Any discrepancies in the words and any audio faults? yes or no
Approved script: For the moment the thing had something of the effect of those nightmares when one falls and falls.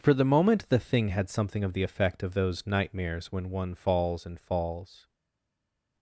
no